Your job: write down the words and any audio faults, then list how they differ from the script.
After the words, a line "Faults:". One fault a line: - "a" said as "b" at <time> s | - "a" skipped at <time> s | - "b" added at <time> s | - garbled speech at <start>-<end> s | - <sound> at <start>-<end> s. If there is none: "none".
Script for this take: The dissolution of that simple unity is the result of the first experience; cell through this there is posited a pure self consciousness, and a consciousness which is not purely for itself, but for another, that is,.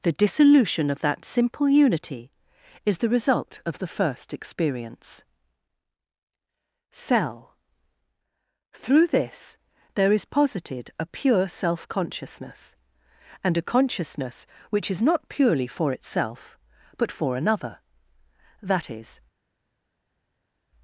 The dissolution of that simple unity is the result of the first experience; cell through this there is posited a pure self consciousness, and a consciousness which is not purely for itself, but for another, that is,.
Faults:
none